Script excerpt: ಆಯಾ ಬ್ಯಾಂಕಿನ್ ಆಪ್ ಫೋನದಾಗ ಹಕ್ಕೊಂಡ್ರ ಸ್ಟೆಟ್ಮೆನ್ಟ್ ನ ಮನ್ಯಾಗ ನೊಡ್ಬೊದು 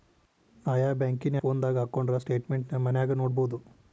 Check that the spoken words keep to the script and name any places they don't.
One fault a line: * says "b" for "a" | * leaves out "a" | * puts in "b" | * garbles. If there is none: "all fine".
* leaves out "ಆಪ್"